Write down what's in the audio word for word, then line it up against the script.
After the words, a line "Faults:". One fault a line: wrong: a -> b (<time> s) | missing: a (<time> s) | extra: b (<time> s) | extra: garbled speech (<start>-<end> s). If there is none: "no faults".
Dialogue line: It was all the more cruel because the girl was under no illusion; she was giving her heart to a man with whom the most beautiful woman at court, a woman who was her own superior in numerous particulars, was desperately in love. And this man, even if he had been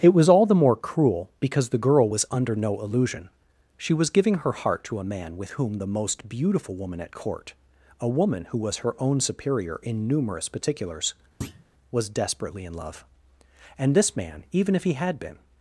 It was all the more cruel because the girl was under no illusion; she was giving her heart to a man with whom the most beautiful woman at court, a woman who was her own superior in numerous particulars, was desperately in love. And this man, even if he had been
Faults:
no faults